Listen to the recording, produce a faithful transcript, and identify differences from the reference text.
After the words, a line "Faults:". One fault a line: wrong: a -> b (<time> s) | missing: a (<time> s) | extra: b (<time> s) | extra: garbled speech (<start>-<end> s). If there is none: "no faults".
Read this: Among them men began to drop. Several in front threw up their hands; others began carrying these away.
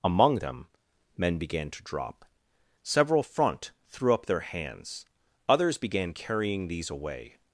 Among them men began to drop. Several front threw up their hands; others began carrying these away.
Faults:
missing: in (3.2 s)